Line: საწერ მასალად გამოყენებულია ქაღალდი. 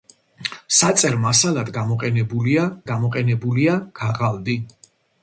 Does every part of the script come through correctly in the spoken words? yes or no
no